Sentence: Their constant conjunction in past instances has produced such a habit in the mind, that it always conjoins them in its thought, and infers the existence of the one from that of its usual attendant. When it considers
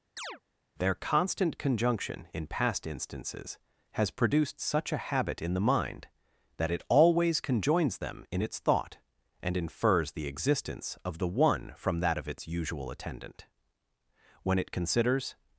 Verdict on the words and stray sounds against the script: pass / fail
fail